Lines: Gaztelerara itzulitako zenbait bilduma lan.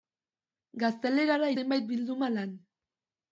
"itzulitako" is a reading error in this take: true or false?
true